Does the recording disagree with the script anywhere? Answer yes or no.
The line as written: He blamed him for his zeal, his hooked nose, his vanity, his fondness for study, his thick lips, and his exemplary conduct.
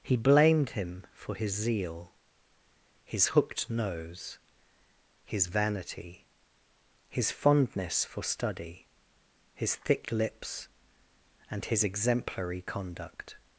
no